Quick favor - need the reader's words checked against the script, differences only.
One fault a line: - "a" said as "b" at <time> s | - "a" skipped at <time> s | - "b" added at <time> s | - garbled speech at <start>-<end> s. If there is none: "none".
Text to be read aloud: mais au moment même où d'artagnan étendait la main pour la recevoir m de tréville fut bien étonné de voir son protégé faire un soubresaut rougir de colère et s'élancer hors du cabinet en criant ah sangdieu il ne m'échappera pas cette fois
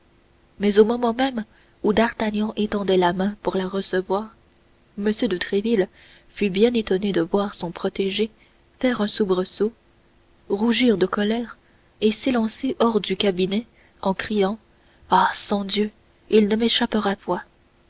- "pas cette" skipped at 17.2 s